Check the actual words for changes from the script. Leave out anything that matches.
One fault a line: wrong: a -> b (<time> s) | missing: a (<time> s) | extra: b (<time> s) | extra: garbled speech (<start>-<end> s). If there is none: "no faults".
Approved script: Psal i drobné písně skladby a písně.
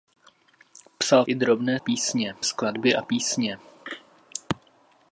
no faults